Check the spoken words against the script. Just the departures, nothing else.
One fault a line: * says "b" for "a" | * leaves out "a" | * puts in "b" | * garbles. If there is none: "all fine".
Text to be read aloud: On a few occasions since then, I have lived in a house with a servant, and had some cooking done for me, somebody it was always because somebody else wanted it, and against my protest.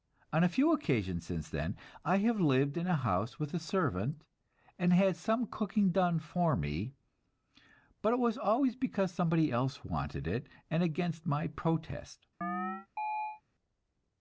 * says "but" for "somebody"